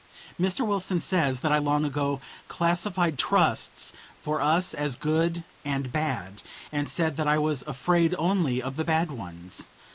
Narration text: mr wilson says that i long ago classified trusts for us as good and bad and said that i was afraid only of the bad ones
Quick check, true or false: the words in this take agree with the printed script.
true